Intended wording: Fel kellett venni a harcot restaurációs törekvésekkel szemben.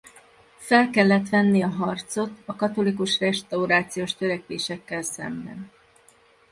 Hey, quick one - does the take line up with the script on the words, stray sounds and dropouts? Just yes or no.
no